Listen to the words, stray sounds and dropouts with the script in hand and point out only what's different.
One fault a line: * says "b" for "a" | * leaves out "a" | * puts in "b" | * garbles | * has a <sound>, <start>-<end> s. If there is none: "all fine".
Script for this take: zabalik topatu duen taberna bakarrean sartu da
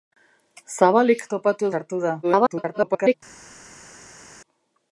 * leaves out "duen taberna bakarrean"
* garbles